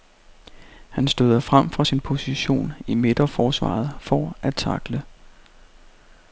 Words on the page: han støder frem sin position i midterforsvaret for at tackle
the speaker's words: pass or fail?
fail